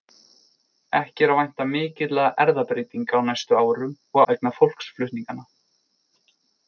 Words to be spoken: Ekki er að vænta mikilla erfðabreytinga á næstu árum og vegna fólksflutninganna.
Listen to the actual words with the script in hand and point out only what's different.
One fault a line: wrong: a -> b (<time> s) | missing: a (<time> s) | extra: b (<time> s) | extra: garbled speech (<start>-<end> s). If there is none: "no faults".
no faults